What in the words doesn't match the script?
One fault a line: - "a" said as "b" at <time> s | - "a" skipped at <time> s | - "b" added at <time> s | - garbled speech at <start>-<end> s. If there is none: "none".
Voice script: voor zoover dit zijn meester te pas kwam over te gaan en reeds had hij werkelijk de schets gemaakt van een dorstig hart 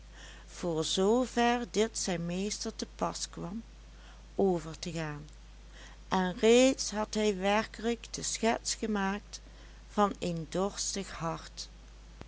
none